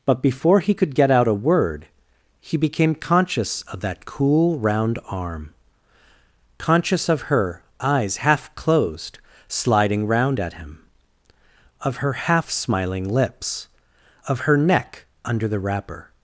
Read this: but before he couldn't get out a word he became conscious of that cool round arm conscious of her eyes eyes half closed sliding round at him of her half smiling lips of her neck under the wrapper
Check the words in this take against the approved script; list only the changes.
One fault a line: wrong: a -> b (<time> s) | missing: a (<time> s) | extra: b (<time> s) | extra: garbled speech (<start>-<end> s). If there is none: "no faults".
wrong: couldn't -> could (0.7 s)
missing: eyes (8.2 s)